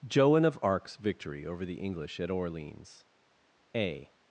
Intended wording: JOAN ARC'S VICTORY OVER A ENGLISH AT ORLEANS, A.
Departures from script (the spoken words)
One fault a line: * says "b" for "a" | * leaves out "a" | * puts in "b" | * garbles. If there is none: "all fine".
* puts in "OF"
* says "THE" for "A"